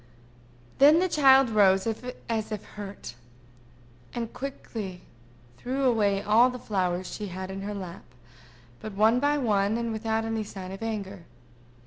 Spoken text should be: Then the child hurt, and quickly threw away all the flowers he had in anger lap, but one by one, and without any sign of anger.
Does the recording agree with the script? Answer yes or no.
no